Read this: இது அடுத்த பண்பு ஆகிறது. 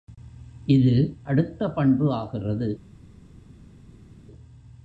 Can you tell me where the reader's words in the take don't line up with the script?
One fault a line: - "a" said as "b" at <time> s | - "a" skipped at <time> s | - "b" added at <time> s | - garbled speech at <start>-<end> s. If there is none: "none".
none